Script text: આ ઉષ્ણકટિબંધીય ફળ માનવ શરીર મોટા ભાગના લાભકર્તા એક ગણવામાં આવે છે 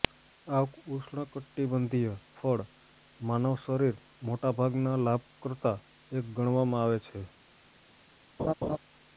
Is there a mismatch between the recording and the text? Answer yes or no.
no